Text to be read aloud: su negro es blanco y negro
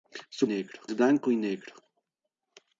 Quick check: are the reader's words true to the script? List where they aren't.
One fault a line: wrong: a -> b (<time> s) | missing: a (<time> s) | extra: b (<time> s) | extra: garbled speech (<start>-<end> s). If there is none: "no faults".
no faults